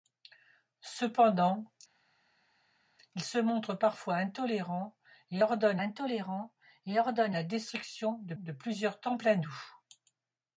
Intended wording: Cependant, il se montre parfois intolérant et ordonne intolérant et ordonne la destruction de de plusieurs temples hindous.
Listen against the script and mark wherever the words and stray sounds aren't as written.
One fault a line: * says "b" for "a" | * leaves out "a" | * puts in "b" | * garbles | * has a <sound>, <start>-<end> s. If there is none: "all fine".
all fine